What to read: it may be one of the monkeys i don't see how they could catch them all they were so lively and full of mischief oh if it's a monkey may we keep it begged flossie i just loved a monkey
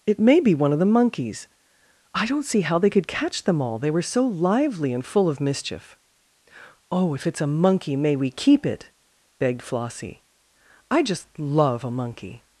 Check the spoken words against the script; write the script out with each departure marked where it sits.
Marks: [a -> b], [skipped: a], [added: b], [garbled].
it may be one of the monkeys i don't see how they could catch them all they were so lively and full of mischief oh if it's a monkey may we keep it begged flossie i just [loved -> love] a monkey